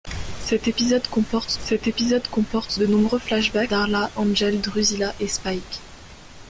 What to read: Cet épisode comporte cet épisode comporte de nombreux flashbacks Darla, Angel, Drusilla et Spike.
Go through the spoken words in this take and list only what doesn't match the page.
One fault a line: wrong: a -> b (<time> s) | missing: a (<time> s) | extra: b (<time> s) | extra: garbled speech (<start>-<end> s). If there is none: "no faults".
no faults